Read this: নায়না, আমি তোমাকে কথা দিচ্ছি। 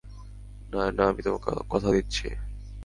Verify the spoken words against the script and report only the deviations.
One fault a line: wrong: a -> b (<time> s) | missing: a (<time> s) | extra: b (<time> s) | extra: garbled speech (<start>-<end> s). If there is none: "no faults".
no faults